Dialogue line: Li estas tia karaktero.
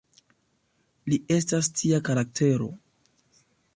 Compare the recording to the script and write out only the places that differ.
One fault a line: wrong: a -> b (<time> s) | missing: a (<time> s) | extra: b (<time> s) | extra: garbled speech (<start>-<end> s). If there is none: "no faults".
no faults